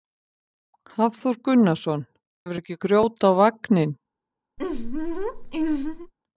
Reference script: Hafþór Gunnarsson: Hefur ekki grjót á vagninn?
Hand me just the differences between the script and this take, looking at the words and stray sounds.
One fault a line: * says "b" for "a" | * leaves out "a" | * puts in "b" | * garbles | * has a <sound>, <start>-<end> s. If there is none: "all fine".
* has a laugh, 4.6-6.1 s